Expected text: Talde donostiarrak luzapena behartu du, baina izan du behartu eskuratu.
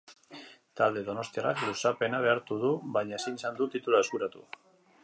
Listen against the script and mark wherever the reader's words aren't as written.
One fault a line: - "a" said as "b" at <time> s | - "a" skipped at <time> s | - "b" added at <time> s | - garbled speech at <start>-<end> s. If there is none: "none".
- "ezin" added at 3.2 s
- "behartu" said as "titulua" at 3.8 s